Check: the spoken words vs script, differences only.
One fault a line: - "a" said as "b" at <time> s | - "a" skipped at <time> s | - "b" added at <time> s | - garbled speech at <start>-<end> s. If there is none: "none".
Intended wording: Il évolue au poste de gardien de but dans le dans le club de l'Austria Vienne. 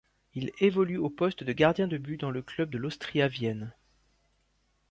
- "dans le" skipped at 2.4 s